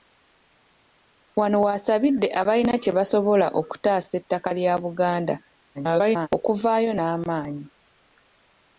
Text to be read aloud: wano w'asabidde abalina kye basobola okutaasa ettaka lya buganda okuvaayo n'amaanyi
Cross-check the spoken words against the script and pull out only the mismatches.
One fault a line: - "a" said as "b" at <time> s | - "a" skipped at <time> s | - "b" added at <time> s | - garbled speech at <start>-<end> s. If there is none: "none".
- garbled speech at 5.7-6.3 s